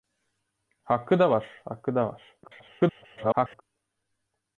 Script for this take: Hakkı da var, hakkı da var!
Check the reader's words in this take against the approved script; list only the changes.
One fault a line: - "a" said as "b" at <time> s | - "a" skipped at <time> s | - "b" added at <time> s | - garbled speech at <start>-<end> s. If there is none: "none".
- garbled speech at 2.4-3.6 s